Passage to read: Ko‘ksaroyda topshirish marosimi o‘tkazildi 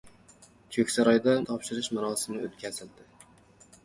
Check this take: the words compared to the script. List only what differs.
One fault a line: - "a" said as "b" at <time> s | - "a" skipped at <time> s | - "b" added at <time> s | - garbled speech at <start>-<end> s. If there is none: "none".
none